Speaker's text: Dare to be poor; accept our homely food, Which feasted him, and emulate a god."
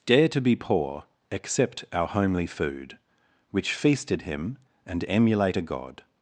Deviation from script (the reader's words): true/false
false